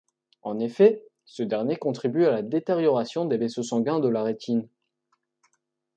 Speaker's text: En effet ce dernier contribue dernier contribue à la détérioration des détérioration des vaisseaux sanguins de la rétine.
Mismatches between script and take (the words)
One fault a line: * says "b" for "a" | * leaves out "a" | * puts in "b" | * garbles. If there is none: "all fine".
* leaves out "dernier contribue"
* leaves out "détérioration des"